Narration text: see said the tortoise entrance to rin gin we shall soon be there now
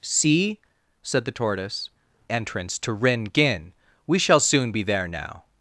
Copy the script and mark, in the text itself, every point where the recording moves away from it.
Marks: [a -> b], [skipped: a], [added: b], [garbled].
see said the tortoise entrance to rin gin we shall soon be there now